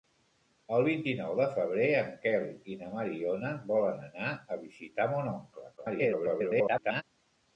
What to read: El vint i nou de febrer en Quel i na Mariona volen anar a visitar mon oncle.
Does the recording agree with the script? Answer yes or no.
no